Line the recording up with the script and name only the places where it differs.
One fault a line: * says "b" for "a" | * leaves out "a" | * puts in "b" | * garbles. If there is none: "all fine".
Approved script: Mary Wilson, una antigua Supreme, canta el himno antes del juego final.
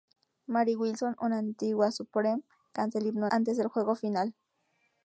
all fine